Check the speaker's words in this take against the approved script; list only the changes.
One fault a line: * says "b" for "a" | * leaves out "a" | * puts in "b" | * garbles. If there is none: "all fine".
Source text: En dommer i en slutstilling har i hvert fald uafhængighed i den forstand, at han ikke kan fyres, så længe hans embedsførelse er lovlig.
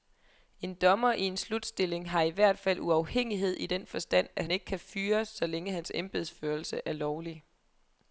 all fine